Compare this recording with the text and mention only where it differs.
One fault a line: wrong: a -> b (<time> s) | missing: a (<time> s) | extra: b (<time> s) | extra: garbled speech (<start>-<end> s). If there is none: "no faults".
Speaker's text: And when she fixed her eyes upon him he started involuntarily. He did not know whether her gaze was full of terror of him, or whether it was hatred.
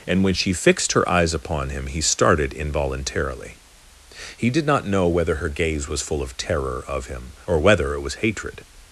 no faults